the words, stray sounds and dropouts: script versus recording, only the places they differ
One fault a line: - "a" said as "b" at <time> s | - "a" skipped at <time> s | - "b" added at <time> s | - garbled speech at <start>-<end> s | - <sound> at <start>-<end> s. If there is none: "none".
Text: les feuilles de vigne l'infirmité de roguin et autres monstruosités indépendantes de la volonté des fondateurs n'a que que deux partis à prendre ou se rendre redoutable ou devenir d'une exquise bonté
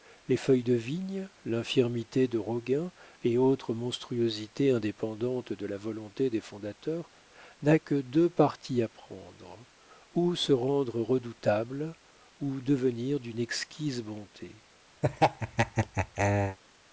- "que" skipped at 7.9 s
- laugh at 15.0-16.6 s